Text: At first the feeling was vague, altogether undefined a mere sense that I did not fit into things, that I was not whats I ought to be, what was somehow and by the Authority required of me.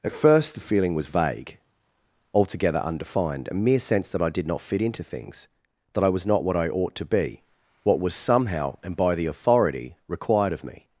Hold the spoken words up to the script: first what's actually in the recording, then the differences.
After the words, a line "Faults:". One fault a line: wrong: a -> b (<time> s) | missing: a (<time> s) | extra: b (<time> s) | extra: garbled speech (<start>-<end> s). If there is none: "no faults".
At first the feeling was vague, altogether undefined a mere sense that I did not fit into things, that I was not what I ought to be, what was somehow and by the Authority required of me.
Faults:
wrong: whats -> what (6.4 s)